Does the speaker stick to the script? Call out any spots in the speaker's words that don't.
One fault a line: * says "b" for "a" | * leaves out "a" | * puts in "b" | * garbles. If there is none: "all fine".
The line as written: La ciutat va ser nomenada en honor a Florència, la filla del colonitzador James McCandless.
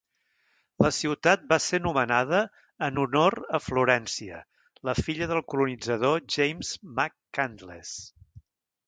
all fine